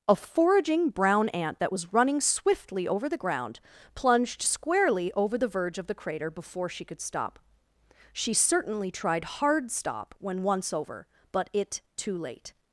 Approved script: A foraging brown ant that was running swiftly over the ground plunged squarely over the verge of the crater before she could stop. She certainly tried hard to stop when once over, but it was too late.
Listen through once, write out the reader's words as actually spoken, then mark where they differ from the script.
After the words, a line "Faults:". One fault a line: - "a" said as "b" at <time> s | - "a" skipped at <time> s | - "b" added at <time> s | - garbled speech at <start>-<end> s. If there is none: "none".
A foraging brown ant that was running swiftly over the ground plunged squarely over the verge of the crater before she could stop. She certainly tried hard stop when once over, but it too late.
Faults:
- "to" skipped at 9.7 s
- "was" skipped at 11.8 s